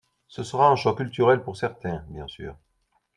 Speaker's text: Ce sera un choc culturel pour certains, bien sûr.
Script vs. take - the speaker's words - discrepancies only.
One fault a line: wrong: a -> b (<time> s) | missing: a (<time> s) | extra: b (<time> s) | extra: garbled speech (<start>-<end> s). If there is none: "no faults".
no faults